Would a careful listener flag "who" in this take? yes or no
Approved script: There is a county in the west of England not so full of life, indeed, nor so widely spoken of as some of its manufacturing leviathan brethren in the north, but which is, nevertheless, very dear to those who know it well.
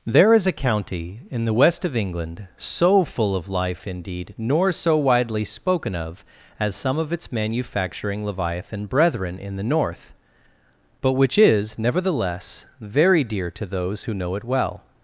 no